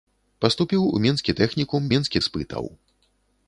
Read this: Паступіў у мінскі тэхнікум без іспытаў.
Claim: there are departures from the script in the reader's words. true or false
true